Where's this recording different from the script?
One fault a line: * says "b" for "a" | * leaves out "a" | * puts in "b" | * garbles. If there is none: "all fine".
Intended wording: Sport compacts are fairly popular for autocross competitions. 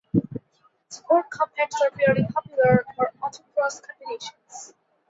all fine